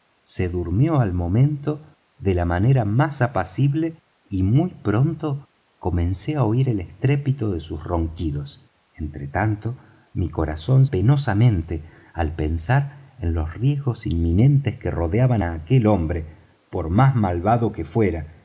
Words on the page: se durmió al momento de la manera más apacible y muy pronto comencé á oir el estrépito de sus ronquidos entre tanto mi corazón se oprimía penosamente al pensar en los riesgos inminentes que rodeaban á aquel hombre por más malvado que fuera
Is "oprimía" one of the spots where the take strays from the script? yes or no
yes